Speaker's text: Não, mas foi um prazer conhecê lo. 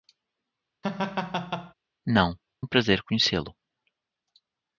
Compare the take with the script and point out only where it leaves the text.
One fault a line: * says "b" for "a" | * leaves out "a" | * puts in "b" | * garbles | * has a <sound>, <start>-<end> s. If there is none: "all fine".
* has a laugh, 0.8-1.7 s
* leaves out "mas foi"